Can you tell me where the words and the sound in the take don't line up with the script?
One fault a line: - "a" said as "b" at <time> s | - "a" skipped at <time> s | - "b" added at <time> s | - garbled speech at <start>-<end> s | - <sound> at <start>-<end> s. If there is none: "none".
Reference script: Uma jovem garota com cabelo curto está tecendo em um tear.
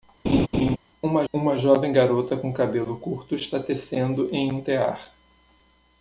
- laugh at 0.2-0.8 s
- "uma" added at 1.3 s